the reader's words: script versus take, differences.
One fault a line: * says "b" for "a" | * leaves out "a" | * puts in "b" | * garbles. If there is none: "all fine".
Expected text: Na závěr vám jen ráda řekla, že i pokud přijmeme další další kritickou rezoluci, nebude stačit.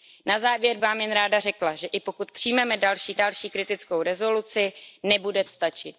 all fine